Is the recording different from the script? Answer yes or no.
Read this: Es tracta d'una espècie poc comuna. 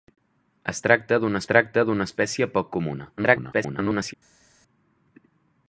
yes